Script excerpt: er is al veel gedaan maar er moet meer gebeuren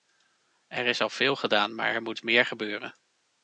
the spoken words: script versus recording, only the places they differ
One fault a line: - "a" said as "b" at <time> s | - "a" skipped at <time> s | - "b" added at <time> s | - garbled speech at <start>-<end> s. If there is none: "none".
none